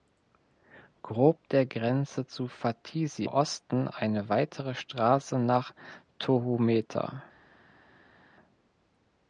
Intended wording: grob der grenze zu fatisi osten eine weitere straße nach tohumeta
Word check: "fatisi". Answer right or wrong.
right